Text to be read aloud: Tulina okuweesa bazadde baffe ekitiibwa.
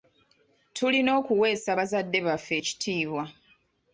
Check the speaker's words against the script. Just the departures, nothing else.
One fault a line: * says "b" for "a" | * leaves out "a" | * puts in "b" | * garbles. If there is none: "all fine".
all fine